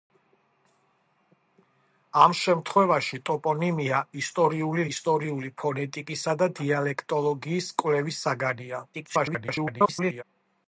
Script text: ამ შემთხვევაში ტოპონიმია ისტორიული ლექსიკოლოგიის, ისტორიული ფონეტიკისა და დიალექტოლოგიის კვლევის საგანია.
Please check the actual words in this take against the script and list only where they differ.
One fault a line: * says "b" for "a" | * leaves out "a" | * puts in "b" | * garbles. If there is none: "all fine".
* leaves out "ლექსიკოლოგიის"
* garbles